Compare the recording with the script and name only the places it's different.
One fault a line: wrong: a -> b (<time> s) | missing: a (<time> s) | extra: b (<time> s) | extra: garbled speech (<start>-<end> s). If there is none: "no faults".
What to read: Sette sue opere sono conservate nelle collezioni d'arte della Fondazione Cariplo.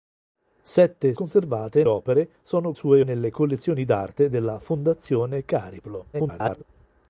wrong: sue -> conservate (1.1 s)
wrong: conservate -> sue (2.7 s)
extra: garbled speech (6.1-6.6 s)